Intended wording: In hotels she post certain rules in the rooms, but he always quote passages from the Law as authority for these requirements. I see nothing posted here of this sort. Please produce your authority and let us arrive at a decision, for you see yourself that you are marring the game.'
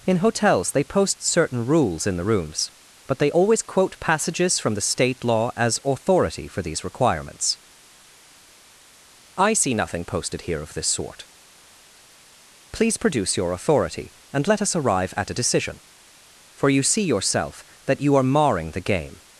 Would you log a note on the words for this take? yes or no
yes